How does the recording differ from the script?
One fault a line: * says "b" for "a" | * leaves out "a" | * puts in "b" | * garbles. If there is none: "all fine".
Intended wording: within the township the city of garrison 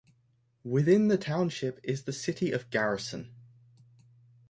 * puts in "is"